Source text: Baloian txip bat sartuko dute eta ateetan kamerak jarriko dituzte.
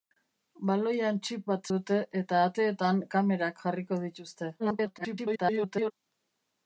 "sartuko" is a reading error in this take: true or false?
true